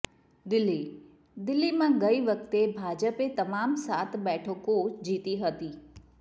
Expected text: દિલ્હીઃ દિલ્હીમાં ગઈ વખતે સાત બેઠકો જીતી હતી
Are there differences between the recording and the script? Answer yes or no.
yes